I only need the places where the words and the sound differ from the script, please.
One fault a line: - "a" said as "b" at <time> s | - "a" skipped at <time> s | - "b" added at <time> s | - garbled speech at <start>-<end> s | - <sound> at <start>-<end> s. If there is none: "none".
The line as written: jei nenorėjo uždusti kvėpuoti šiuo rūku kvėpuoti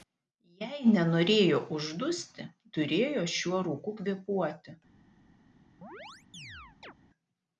- "kvėpuoti" said as "turėjo" at 2.8 s
- chirp at 5.8-6.9 s